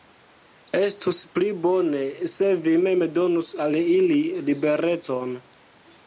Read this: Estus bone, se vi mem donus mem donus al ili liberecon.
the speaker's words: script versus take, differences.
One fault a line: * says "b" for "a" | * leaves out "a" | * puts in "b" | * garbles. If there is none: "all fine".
* puts in "pli"
* leaves out "mem donus"